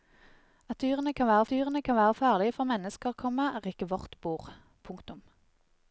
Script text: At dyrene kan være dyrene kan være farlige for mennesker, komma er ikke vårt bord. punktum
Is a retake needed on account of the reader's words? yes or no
no